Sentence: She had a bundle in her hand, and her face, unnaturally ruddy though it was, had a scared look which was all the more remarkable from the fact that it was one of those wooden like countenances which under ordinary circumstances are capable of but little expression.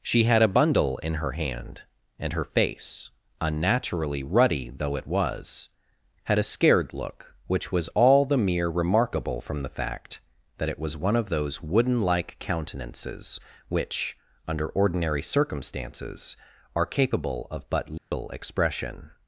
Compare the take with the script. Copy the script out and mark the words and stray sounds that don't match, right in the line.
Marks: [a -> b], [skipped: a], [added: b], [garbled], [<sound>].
She had a bundle in her hand, and her face, unnaturally ruddy though it was, had a scared look which was all the [more -> mere] remarkable from the fact that it was one of those wooden like countenances which under ordinary circumstances are capable of but little [dropout] expression.